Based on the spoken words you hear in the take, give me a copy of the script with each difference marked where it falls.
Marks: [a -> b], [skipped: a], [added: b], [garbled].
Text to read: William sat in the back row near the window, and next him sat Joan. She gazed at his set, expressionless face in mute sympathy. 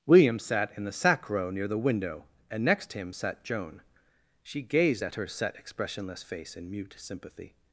William sat in the [back -> sack] row near the window, and next him sat Joan. She gazed at [his -> her] set, expressionless face in mute sympathy.